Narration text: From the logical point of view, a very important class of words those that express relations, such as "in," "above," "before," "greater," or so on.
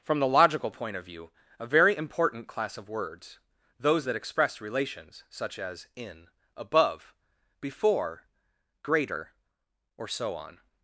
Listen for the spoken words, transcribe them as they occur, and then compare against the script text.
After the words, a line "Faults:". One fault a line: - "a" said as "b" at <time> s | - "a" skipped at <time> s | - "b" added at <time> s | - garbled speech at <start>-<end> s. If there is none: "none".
From the logical point of view, a very important class of words those that express relations, such as "in," "above," "before," "greater," or so on.
Faults:
none